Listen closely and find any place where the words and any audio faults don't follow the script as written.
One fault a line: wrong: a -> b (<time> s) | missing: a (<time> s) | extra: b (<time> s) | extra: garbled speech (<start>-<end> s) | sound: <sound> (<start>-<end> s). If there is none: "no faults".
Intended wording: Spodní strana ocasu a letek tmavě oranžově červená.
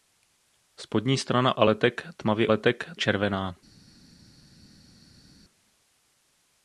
missing: ocasu (1.6 s)
wrong: oranžově -> letek (2.5 s)